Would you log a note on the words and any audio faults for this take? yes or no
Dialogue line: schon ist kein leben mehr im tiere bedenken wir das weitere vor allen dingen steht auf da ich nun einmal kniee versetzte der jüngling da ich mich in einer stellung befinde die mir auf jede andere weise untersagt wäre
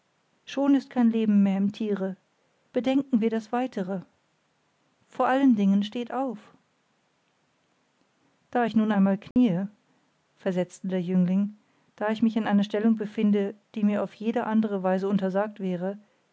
yes